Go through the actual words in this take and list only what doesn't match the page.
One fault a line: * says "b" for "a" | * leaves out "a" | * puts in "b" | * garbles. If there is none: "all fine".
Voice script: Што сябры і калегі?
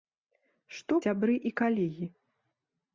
all fine